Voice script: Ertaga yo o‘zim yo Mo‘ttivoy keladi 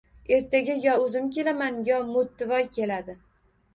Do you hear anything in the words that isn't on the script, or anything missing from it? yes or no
yes